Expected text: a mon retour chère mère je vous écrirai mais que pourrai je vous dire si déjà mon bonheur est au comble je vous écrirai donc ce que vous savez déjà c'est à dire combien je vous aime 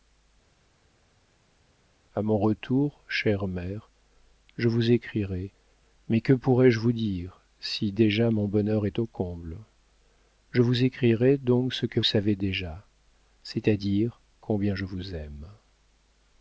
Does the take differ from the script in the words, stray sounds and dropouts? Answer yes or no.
yes